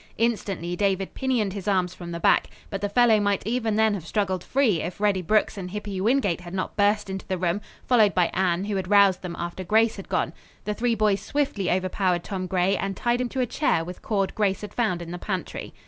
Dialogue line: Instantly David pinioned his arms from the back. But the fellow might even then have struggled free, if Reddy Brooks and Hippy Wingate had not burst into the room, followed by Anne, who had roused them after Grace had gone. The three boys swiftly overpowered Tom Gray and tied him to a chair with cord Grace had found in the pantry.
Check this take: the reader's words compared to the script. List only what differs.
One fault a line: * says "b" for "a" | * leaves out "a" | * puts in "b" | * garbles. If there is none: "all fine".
all fine